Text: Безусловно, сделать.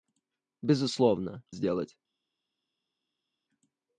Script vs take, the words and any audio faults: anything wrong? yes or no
no